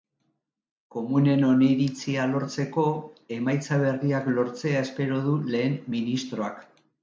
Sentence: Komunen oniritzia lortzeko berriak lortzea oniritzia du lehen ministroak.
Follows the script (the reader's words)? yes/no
no